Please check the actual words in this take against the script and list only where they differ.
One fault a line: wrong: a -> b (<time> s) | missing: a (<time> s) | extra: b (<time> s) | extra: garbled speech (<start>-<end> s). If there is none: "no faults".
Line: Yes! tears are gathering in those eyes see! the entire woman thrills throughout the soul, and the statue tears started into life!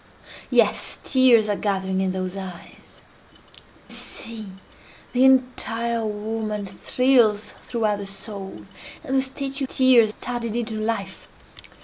no faults